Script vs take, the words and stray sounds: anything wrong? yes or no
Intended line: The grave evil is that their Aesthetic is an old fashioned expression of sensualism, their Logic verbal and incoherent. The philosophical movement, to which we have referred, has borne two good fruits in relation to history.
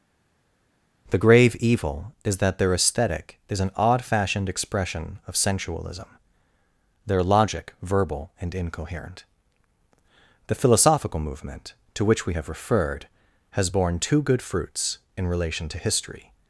yes